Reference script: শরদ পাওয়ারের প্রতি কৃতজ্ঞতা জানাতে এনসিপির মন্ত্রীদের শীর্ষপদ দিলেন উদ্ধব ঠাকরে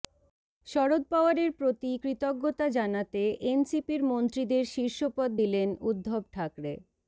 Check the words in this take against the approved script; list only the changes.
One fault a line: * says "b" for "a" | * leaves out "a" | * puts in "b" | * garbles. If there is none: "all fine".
all fine